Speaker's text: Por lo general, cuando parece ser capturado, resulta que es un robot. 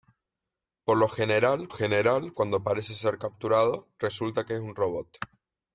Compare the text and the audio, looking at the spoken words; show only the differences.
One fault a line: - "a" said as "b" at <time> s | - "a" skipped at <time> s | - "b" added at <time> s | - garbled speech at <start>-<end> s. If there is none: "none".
- "general" added at 1.7 s